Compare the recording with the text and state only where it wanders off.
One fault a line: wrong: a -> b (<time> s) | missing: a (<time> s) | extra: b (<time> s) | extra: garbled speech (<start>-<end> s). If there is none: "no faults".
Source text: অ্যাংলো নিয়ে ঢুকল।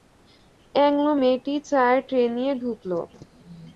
extra: মেয়েটি চায়ের ট্রে (1.2 s)